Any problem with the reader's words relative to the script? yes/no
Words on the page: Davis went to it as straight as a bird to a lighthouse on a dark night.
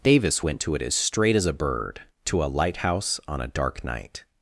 no